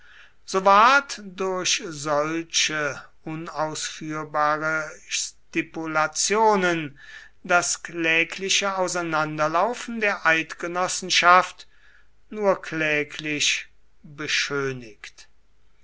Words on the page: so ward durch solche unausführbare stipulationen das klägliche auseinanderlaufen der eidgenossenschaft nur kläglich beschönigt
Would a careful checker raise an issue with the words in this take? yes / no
no